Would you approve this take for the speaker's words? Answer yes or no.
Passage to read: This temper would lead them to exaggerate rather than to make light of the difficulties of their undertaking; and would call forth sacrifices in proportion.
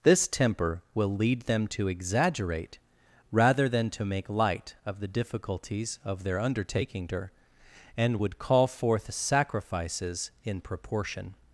no